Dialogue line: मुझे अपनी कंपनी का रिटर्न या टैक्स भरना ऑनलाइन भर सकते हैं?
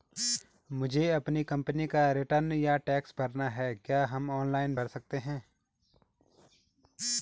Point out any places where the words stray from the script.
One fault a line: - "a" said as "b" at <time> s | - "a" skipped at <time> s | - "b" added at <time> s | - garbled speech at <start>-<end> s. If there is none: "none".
- "है क्या हम" added at 3.5 s